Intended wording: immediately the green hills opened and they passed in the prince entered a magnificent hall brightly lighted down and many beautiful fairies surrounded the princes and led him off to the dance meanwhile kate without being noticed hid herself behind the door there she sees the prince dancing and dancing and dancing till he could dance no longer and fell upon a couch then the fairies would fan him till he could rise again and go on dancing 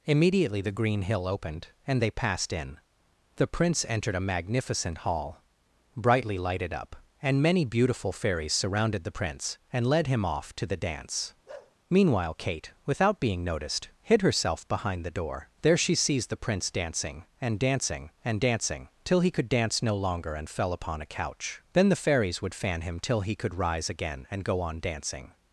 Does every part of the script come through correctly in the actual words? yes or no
no